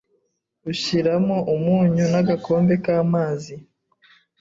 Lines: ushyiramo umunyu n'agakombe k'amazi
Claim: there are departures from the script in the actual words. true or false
false